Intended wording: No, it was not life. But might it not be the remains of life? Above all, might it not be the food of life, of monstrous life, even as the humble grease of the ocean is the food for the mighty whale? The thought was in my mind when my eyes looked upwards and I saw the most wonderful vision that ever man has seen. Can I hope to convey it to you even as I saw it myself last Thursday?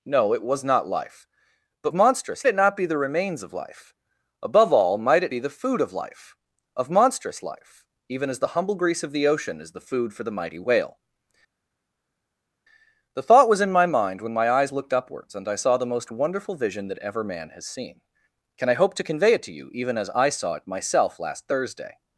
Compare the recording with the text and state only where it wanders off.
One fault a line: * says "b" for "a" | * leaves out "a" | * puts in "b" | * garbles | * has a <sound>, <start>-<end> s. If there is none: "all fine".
* says "monstrous" for "might"
* leaves out "not"